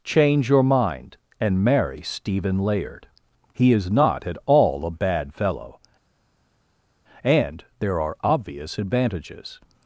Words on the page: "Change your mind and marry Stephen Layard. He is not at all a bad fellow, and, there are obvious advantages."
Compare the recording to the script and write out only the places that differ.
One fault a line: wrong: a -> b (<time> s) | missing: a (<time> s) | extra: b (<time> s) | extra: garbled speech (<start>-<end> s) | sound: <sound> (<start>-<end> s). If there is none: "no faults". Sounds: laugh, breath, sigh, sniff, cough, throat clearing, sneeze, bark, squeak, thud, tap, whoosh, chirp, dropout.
no faults